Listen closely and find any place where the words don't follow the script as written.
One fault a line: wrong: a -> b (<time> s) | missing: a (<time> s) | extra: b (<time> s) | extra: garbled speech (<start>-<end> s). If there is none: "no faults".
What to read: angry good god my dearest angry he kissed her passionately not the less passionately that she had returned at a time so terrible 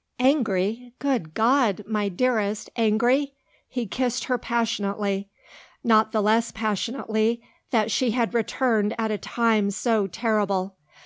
no faults